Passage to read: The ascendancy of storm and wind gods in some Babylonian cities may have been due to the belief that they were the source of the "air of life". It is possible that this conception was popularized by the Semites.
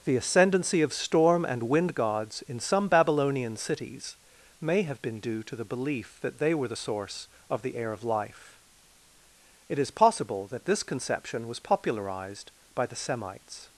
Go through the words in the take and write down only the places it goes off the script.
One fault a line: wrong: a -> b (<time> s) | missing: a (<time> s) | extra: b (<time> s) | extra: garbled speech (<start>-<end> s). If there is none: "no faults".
no faults